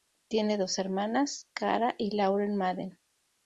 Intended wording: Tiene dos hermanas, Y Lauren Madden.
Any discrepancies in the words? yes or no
yes